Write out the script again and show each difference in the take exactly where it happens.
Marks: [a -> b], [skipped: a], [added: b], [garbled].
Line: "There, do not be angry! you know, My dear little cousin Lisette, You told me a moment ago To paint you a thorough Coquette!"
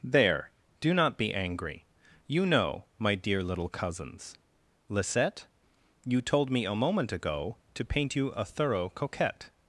"There, do not be angry! you know, My dear little [cousin -> cousins] Lisette, You told me a moment ago To paint you a thorough Coquette!"